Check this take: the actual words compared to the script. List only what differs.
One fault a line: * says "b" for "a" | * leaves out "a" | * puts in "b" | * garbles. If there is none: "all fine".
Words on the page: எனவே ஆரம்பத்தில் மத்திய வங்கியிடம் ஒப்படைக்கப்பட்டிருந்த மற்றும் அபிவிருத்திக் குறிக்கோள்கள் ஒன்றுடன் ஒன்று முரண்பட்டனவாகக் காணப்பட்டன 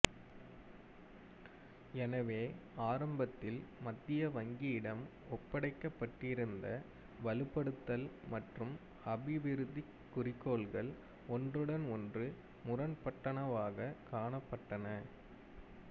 * puts in "வலுப்படுத்தல்"